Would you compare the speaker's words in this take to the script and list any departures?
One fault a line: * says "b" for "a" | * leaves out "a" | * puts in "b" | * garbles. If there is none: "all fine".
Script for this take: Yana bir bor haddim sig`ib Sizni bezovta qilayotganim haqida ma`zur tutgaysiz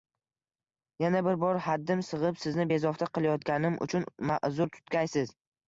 * says "uchun" for "haqida"